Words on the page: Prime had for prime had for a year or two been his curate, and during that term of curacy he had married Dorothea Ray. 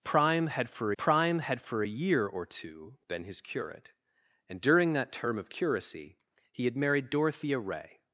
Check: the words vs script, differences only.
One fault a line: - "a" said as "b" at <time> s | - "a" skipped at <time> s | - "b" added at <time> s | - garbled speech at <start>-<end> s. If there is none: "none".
none